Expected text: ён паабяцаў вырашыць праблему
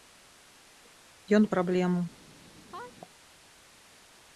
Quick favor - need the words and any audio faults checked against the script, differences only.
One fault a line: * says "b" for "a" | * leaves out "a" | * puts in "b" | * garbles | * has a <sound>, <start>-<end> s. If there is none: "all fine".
* leaves out "паабяцаў вырашыць"
* has a sneeze, 2.7-2.9 s